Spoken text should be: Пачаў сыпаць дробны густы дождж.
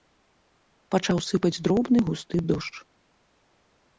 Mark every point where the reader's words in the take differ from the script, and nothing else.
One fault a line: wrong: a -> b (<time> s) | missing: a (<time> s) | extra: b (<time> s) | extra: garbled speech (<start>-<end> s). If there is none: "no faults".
no faults